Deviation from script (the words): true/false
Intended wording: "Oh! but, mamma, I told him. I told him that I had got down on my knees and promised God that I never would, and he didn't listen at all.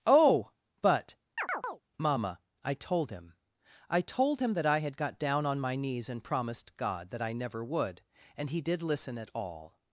true